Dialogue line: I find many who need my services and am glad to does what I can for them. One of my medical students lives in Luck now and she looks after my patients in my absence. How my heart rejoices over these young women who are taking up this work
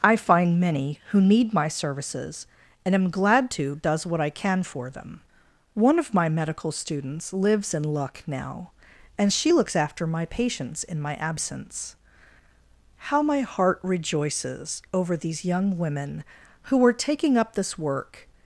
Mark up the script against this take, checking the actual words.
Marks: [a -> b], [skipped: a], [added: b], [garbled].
I find many who need my services and am glad to does what I can for them. One of my medical students lives in Luck now and she looks after my patients in my absence. How my heart rejoices over these young women who are taking up this work